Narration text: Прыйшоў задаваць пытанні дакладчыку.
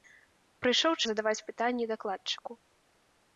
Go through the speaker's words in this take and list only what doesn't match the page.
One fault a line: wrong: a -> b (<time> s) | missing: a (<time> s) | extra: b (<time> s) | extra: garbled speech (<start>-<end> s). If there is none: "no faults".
no faults